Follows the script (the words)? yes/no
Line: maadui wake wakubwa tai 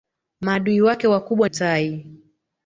yes